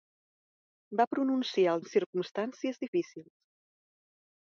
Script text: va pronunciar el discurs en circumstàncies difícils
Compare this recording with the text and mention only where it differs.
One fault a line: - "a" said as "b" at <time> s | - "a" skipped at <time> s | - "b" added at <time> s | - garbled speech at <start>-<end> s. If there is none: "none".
- "discurs" skipped at 1.9 s